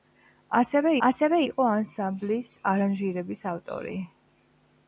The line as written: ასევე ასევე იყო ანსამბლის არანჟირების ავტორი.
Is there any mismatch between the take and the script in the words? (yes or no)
no